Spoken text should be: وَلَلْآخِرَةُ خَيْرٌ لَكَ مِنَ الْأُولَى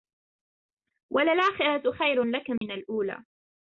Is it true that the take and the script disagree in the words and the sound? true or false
true